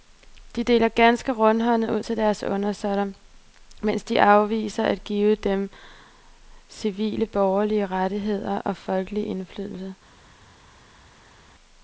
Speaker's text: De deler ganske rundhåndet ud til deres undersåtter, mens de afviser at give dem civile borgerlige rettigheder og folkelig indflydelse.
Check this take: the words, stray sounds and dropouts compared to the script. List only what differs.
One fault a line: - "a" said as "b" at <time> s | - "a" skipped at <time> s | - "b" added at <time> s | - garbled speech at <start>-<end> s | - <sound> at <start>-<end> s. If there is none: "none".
none